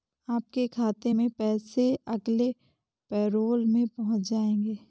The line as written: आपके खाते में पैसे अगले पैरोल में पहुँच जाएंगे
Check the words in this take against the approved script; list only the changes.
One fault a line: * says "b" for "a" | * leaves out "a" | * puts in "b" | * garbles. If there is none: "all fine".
all fine